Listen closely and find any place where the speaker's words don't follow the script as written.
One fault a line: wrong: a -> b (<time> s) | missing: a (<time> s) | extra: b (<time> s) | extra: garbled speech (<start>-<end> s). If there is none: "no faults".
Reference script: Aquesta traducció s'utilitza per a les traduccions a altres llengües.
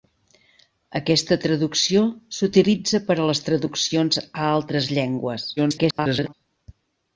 extra: garbled speech (5.6-6.3 s)